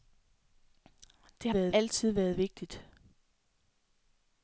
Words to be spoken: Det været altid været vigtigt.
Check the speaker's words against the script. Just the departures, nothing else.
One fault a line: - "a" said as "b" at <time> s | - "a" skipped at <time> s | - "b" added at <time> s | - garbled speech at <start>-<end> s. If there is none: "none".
none